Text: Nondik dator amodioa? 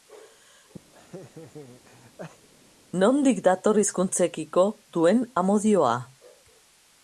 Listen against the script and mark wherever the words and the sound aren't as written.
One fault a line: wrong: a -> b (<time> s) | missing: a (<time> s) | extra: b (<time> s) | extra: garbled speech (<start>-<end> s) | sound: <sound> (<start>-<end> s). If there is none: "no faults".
sound: laugh (0.9-2.5 s)
extra: hizkuntzekiko duen (3.8 s)